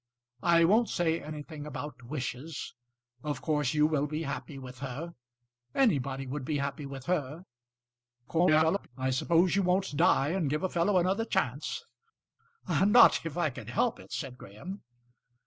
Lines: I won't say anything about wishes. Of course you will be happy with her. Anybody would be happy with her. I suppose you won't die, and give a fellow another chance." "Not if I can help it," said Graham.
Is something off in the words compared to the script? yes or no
yes